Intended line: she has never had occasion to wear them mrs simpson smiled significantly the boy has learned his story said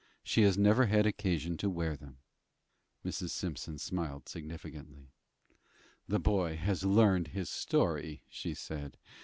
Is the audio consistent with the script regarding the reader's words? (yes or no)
no